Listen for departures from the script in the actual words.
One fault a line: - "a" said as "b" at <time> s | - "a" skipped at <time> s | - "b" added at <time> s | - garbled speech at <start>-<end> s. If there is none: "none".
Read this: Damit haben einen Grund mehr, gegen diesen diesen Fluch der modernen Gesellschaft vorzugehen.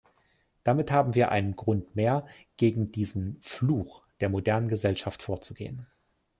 - "wir" added at 1.1 s
- "diesen" skipped at 3.4 s